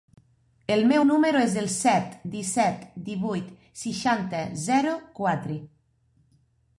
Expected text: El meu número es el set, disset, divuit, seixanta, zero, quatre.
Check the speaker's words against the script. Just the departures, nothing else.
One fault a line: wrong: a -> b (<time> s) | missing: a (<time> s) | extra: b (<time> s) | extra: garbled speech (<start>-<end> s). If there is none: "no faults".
no faults